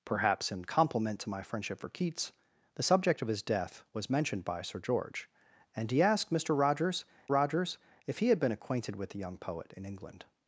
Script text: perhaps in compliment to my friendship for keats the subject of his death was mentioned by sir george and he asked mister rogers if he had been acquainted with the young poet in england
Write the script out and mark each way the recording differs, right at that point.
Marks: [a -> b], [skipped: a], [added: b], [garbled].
perhaps in compliment to my friendship for keats the subject of his death was mentioned by sir george and he asked mister rogers [added: rogers] if he had been acquainted with the young poet in england